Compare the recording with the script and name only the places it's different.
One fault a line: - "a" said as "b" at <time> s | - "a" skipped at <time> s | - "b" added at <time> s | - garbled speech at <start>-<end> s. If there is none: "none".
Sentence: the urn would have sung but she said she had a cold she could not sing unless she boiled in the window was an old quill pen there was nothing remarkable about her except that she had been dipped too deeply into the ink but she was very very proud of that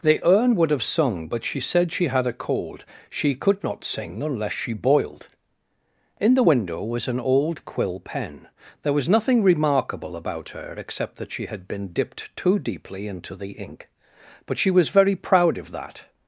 - "very" skipped at 15.2 s